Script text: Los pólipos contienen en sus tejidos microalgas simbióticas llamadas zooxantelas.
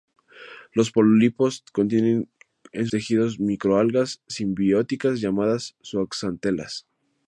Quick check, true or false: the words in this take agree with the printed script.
false